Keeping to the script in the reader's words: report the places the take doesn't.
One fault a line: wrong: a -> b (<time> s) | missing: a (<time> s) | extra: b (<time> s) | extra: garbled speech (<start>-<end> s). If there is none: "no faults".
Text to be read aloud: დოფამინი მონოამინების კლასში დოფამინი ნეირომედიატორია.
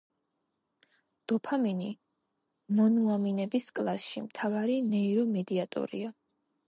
wrong: დოფამინი -> მთავარი (4.3 s)